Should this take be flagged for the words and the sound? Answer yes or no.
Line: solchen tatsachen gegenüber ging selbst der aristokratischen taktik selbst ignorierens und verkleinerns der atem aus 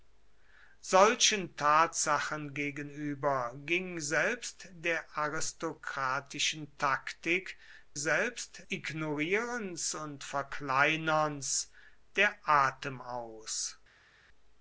no